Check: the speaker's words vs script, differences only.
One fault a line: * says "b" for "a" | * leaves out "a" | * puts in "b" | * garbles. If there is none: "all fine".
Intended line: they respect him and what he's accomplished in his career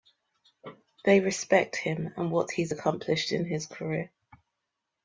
all fine